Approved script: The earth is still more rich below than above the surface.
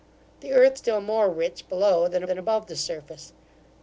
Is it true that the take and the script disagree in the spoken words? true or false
true